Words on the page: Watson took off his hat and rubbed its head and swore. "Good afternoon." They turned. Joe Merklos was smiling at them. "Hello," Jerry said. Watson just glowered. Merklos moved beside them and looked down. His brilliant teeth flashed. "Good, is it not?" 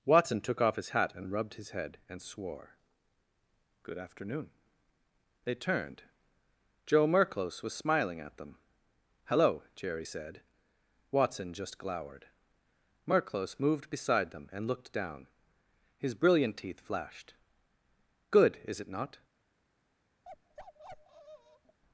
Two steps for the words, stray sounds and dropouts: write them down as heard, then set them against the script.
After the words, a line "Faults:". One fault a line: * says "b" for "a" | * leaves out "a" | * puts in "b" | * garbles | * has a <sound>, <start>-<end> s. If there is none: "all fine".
Watson took off his hat and rubbed his head and swore. "Good afternoon." They turned. Joe Merklos was smiling at them. "Hello," Jerry said. Watson just glowered. Merklos moved beside them and looked down. His brilliant teeth flashed. "Good, is it not?"
Faults:
* says "his" for "its"
* has a bark, 20.2-21.8 s